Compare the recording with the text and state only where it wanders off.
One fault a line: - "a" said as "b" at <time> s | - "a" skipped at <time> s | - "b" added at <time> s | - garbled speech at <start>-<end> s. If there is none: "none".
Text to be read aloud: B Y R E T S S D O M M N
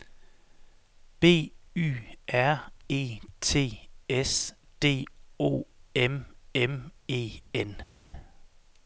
- "S" skipped at 4.5 s
- "E" added at 7.1 s